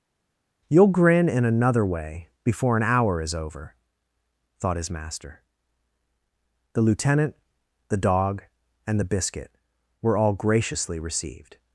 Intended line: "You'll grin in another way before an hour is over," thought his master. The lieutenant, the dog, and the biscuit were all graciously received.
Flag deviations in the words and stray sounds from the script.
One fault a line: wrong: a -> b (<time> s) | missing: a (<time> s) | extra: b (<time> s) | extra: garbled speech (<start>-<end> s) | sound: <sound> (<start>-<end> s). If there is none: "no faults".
no faults